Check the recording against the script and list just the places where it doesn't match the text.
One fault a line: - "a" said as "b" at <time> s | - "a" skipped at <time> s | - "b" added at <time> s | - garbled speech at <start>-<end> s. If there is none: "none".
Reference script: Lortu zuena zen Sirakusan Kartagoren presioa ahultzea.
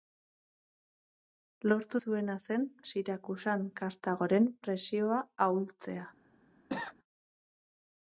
none